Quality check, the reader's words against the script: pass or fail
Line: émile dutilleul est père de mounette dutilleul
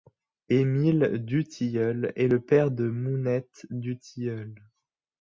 fail